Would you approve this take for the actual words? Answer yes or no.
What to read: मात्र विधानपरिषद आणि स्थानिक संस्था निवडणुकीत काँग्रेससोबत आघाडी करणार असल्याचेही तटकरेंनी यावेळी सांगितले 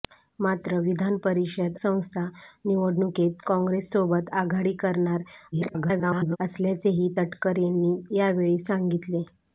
no